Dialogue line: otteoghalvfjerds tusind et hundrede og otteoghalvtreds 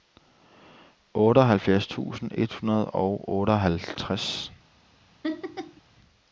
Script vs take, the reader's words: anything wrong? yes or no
no